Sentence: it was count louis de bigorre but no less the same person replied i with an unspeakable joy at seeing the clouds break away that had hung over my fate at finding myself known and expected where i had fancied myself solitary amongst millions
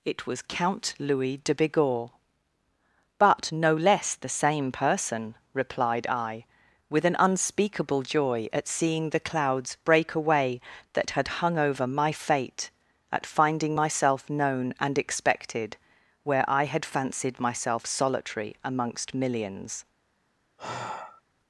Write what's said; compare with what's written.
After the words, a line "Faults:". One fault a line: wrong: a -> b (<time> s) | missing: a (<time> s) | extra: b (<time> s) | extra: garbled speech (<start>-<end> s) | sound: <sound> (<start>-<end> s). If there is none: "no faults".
it was count louis de bigorre but no less the same person replied i with an unspeakable joy at seeing the clouds break away that had hung over my fate at finding myself known and expected where i had fancied myself solitary amongst millions
Faults:
sound: sigh (20.6-21.2 s)